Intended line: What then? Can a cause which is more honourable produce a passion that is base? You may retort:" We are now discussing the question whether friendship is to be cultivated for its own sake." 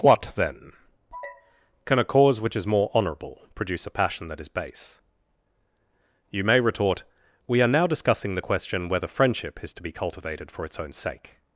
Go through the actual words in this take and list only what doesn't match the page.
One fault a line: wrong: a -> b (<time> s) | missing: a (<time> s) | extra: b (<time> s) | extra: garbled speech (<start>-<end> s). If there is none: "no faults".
no faults